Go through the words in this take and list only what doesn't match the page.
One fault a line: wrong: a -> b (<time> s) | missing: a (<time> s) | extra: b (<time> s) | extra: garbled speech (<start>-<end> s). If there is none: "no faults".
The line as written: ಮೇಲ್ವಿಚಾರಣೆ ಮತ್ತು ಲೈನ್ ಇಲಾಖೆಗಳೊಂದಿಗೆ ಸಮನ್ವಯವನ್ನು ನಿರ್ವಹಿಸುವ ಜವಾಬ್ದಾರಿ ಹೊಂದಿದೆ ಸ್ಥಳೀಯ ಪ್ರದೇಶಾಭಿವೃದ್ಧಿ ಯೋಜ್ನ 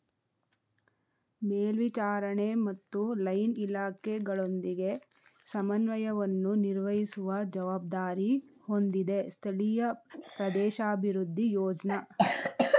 no faults